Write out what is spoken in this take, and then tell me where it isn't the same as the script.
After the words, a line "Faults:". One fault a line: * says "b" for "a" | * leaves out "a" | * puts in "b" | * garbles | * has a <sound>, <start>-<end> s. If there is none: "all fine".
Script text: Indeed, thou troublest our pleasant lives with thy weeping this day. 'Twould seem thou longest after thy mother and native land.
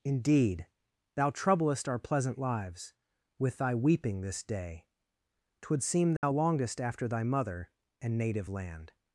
Indeed, thou troublest our pleasant lives with thy weeping this day. 'Twould seem thou longest after thy mother and native land.
Faults:
* has a dropout, 6.2-6.2 s